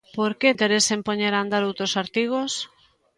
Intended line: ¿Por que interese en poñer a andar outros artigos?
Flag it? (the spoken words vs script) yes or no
no